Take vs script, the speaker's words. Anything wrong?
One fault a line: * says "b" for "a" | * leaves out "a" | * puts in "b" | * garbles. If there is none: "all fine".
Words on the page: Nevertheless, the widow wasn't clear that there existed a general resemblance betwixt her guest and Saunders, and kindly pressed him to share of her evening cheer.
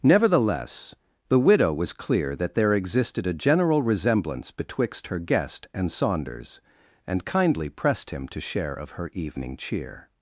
* says "was" for "wasn't"